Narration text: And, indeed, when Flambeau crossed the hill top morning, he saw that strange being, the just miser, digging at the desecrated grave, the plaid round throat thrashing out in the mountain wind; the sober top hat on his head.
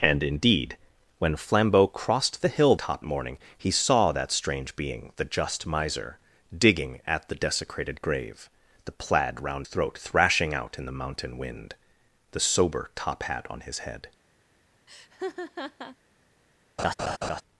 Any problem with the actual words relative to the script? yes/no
no